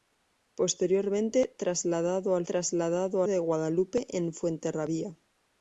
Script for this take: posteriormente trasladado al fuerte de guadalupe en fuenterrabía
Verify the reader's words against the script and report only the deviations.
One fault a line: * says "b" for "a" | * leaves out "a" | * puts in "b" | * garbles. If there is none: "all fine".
* says "trasladado" for "fuerte"